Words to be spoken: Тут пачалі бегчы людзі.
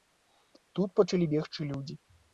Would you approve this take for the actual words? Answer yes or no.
yes